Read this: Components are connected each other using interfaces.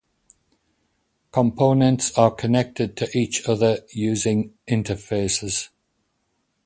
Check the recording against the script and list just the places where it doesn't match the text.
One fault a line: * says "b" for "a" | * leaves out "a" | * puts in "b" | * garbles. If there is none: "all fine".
* puts in "to"